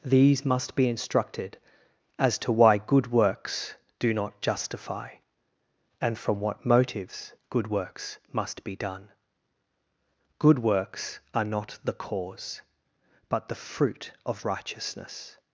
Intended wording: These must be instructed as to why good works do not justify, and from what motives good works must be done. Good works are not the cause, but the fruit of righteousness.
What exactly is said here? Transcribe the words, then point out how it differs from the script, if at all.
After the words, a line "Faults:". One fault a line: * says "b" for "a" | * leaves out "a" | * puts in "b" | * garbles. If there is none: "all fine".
These must be instructed as to why good works do not justify, and from what motives good works must be done. Good works are not the cause, but the fruit of righteousness.
Faults:
all fine